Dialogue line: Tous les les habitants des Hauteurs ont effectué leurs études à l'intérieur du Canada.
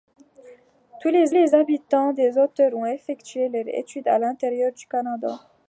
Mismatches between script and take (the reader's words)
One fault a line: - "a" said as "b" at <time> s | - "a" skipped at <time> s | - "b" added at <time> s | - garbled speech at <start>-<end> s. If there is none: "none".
none